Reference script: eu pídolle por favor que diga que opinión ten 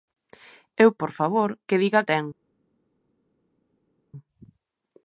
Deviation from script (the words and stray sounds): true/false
true